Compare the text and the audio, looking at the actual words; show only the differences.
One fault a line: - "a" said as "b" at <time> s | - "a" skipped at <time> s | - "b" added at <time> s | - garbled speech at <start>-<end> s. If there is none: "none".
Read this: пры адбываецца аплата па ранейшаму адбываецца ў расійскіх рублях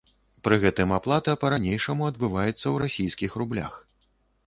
- "адбываецца" said as "гэтым" at 0.6 s